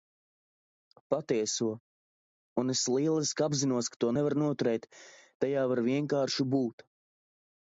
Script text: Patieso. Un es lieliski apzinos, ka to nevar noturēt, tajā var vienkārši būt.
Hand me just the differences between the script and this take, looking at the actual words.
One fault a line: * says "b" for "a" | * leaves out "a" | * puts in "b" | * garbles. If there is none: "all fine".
all fine